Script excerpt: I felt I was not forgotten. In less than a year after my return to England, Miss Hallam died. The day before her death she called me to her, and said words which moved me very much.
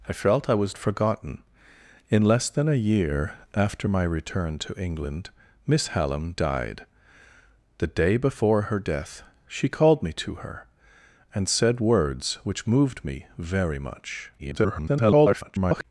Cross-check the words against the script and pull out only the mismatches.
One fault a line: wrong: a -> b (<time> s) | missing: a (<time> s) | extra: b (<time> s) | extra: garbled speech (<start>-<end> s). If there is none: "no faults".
missing: not (0.8 s)
extra: garbled speech (14.4-15.8 s)